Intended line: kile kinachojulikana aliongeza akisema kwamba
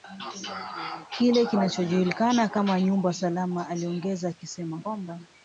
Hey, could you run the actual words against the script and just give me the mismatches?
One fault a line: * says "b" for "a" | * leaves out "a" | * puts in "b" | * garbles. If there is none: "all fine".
* puts in "kama nyumba salama"